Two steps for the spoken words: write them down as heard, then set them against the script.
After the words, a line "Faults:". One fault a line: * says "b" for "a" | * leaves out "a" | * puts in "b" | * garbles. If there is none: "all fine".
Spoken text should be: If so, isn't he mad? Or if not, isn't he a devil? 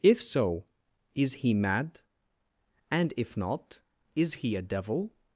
If so, is he mad? And if not, is he a devil?
Faults:
* says "is" for "isn't"
* says "And" for "Or"
* says "is" for "isn't"